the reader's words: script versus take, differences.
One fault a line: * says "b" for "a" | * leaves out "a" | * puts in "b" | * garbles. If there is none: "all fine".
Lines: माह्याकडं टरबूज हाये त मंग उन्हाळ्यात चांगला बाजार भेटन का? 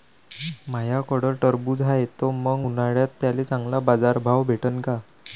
* puts in "त्याले"
* puts in "भाव"